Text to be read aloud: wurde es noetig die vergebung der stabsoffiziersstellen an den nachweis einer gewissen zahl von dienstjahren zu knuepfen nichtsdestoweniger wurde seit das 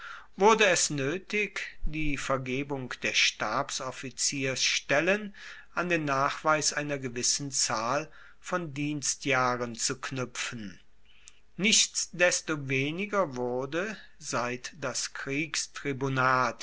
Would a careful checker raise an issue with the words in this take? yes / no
no